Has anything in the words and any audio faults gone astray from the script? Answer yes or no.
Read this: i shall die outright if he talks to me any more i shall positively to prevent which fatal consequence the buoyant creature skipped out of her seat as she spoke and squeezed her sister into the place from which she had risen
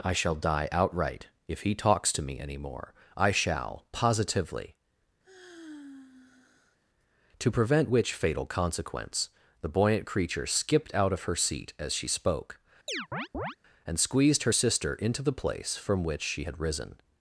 yes